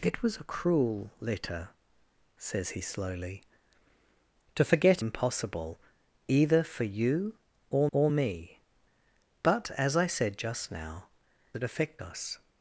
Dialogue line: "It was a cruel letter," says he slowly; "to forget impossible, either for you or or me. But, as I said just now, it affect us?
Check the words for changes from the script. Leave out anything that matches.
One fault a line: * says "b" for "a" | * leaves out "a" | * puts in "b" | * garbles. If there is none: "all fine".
all fine